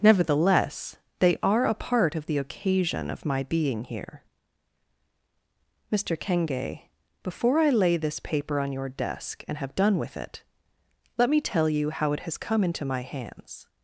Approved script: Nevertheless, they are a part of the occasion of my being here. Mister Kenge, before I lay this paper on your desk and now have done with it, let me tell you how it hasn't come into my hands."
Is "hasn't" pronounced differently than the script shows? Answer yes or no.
yes